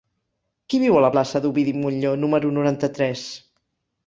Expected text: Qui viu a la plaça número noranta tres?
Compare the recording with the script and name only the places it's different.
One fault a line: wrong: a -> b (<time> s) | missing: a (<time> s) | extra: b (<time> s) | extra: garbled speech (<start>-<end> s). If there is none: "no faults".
extra: d'Ovidi Montllor (1.4 s)